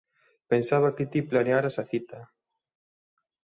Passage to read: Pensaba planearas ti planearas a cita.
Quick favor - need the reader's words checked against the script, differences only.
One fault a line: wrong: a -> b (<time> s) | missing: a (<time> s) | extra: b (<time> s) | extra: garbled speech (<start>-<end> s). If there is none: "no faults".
wrong: planearas -> que (0.9 s)